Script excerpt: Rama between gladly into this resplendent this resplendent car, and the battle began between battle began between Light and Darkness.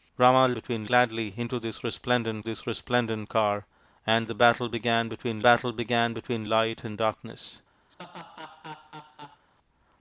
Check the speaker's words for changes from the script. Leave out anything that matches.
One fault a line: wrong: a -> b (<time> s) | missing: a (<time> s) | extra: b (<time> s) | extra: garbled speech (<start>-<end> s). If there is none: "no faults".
no faults